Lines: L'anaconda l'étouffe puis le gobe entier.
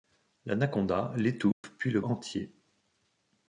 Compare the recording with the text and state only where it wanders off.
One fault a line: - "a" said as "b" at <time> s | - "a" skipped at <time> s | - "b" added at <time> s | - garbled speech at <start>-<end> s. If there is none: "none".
- "gobe" skipped at 2.0 s